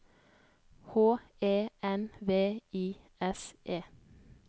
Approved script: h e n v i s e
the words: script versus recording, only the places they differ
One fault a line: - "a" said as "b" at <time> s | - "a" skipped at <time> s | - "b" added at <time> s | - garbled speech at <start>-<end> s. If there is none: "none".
none